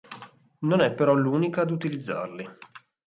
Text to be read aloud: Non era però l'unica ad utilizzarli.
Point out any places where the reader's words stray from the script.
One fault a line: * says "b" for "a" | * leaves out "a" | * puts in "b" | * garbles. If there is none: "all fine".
* says "è" for "era"